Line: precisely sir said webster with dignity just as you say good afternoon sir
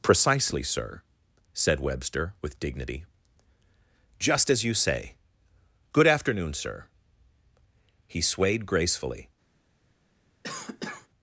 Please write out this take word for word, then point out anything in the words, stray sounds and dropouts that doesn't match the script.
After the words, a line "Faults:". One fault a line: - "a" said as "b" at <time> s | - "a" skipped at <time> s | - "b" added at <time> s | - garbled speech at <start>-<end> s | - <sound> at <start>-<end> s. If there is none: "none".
precisely sir said webster with dignity just as you say good afternoon sir he swayed gracefully
Faults:
- "he swayed gracefully" added at 8.1 s
- cough at 10.4-11.1 s